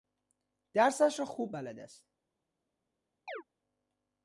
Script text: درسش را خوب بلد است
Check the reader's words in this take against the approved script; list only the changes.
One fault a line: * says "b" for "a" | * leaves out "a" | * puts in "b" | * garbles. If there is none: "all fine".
all fine